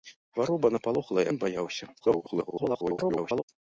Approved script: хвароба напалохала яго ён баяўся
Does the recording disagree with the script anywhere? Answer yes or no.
yes